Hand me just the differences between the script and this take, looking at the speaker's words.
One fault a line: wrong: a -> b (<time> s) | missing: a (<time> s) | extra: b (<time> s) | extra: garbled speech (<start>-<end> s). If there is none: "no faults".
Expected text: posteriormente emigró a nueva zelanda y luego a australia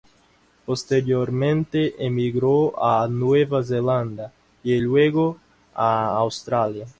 no faults